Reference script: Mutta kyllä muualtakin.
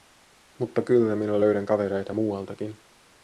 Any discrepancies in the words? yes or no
yes